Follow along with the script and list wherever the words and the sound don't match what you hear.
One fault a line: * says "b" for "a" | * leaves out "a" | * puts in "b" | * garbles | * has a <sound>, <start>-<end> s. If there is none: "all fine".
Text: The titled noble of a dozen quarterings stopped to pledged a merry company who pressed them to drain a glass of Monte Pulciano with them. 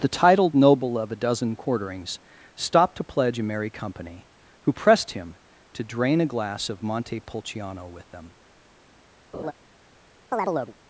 * says "pledge" for "pledged"
* says "him" for "them"
* has a laugh, 9.3-9.5 s
* has a chirp, 10.3-10.7 s